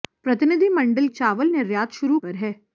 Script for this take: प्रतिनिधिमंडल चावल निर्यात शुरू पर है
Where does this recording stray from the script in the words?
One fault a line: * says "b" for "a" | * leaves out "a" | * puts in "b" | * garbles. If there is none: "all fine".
all fine